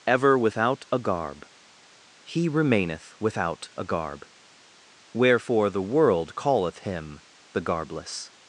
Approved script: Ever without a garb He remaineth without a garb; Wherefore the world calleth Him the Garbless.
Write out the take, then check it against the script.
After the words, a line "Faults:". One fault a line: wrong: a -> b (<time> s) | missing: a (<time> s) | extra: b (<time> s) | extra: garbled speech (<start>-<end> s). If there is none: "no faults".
Ever without a garb He remaineth without a garb; Wherefore the world calleth Him the Garbless.
Faults:
no faults